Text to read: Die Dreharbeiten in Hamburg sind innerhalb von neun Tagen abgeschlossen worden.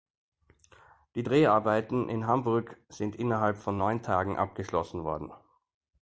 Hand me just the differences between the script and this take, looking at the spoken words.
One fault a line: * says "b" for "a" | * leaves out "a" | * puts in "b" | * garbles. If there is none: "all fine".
all fine